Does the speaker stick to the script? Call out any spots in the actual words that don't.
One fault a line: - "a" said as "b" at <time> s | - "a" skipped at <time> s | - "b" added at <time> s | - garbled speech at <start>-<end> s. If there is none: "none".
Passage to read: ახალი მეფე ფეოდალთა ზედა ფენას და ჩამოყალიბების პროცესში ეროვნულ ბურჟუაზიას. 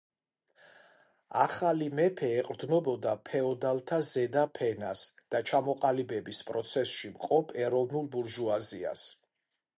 - "ეყრდნობოდა" added at 2.4 s
- "მყოფ" added at 7.2 s